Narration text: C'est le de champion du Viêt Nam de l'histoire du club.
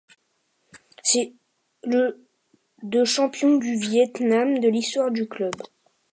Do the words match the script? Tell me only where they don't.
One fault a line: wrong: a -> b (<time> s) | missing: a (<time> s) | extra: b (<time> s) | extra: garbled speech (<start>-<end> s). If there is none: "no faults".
no faults